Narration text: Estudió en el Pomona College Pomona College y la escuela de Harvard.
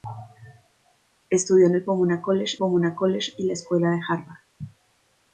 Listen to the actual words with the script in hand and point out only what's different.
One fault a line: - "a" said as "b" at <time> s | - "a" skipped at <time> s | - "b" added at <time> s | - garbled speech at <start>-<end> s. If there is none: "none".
none